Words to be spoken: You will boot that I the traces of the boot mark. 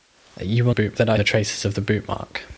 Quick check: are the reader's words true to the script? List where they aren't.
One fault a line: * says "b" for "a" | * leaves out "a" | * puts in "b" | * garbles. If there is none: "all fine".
all fine